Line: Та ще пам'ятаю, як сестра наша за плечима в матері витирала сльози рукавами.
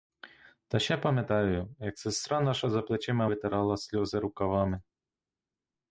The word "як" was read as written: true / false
true